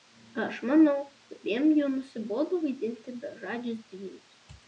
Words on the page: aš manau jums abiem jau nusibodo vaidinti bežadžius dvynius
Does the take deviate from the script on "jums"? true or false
true